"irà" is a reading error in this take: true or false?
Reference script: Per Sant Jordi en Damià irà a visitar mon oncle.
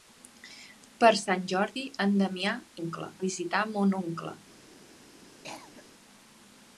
true